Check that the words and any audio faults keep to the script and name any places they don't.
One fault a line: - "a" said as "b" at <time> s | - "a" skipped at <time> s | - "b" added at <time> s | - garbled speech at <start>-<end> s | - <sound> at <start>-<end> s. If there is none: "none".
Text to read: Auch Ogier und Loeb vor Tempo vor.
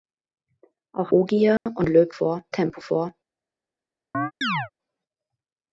- dropout at 1.6-1.7 s
- chirp at 4.1-4.7 s